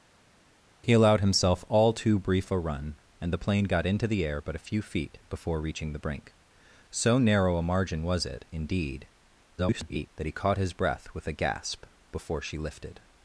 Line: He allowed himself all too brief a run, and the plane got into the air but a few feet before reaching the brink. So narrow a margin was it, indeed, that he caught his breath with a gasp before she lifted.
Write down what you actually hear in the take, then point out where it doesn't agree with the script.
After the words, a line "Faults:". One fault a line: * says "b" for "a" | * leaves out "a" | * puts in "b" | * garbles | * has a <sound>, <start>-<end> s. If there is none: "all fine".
He allowed himself all too brief a run, and the plane got into the air but a few feet before reaching the brink. So narrow a margin was it, indeed, [garbled] that he caught his breath with a gasp before she lifted.
Faults:
* garbles